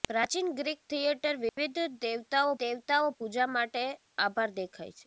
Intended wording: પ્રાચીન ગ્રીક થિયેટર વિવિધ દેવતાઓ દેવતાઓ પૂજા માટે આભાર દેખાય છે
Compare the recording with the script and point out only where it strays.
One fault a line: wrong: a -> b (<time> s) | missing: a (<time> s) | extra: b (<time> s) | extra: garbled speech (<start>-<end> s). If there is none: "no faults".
no faults